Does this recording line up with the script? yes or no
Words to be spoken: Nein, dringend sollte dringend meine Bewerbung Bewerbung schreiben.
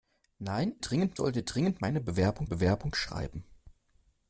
yes